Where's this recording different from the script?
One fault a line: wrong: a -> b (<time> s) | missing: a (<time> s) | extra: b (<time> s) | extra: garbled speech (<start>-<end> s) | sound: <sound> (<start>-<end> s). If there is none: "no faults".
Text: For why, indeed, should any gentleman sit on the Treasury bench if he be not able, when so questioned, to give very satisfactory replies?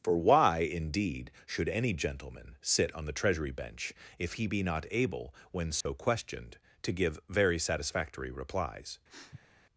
sound: dropout (5.8-5.9 s)
sound: sniff (9.1-9.5 s)